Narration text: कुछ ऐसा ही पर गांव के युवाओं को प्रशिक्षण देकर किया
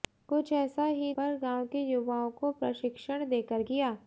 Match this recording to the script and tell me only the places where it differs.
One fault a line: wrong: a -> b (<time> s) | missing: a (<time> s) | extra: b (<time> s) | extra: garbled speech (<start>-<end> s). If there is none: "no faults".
no faults